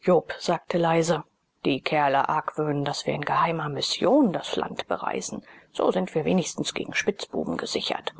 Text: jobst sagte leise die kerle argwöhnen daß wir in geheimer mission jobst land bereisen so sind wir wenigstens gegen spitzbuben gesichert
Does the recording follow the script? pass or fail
fail